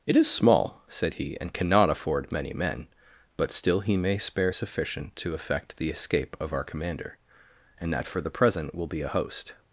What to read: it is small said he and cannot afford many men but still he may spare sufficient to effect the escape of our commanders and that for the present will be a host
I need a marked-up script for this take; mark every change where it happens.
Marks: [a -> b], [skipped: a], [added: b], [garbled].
it is small said he and cannot afford many men but still he may spare sufficient to effect the escape of our [commanders -> commander] and that for the present will be a host